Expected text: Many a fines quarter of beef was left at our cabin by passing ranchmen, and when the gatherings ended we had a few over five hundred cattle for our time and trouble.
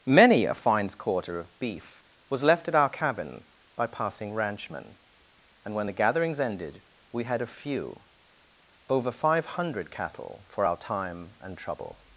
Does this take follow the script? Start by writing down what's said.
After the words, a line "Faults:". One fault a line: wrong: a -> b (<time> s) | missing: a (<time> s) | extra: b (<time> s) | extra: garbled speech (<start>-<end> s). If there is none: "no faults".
Many a fines quarter of beef was left at our cabin by passing ranchmen, and when the gatherings ended we had a few over five hundred cattle for our time and trouble.
Faults:
no faults